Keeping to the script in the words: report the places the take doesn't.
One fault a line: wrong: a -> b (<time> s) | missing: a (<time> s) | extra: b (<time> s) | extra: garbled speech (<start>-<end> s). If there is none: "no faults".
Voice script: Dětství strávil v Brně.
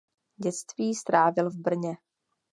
no faults